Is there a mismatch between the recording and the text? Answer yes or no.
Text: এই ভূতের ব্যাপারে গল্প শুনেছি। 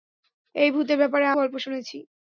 no